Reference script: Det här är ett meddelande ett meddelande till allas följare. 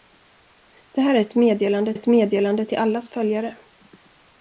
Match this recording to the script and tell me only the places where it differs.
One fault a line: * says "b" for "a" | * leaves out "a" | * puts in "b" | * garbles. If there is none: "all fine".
all fine